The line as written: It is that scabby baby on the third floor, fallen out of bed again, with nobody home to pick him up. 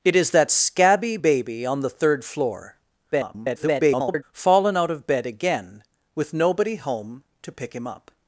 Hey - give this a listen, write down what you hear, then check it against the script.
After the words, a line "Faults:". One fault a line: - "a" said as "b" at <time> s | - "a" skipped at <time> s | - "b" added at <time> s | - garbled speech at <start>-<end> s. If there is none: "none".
It is that scabby baby on the third floor, [garbled] fallen out of bed again, with nobody home to pick him up.
Faults:
- garbled speech at 3.1-4.2 s